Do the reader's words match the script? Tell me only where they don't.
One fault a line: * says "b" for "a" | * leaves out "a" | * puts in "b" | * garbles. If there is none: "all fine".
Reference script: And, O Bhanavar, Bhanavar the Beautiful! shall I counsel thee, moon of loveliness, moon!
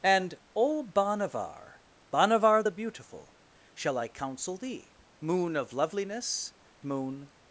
all fine